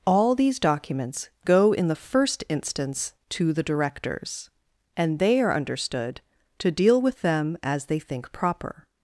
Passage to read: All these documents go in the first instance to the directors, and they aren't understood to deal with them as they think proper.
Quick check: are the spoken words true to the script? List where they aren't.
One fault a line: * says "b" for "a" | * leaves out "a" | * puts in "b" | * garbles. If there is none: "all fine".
* says "are" for "aren't"